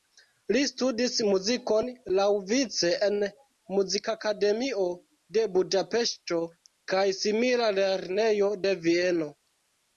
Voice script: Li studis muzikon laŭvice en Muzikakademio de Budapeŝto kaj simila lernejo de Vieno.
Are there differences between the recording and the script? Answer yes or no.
no